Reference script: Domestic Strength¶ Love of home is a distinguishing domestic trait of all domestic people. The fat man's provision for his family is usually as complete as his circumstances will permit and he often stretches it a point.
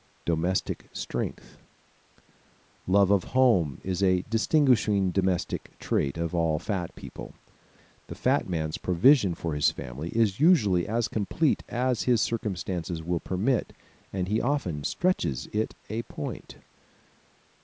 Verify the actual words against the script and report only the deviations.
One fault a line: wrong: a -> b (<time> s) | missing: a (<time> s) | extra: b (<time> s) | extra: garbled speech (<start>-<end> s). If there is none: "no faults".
wrong: domestic -> fat (6.6 s)